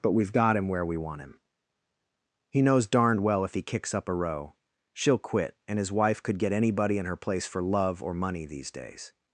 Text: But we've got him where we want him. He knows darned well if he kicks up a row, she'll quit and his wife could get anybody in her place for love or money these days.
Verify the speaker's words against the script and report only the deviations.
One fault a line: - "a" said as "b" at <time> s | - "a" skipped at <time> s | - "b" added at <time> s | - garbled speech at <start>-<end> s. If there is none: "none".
none